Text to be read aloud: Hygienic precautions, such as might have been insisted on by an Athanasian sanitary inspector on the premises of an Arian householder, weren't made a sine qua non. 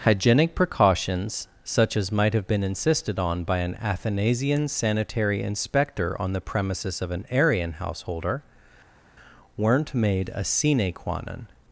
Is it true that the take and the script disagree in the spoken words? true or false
false